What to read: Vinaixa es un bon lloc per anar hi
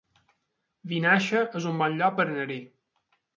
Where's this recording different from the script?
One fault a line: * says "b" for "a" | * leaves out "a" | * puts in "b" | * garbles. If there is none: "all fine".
all fine